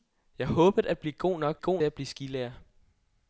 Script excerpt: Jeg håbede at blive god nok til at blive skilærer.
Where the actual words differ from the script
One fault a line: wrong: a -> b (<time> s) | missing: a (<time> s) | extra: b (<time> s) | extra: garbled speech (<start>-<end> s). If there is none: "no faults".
wrong: til -> god (1.6 s)